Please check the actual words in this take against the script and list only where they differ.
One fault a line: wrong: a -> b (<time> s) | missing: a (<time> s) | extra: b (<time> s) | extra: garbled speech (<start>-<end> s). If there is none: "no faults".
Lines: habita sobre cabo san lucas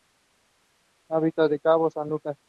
wrong: sobre -> en (1.4 s)